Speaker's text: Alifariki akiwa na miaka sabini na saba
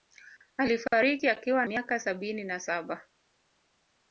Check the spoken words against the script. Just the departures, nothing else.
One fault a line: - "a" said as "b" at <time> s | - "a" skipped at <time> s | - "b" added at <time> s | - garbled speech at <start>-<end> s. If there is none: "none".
- "na" skipped at 1.6 s